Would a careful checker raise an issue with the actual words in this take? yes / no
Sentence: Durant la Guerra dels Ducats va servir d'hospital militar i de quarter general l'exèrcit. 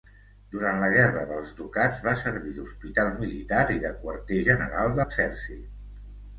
no